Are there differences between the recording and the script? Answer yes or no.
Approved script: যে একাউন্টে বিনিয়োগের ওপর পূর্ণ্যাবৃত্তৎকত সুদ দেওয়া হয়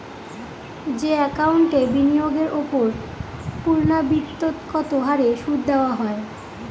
yes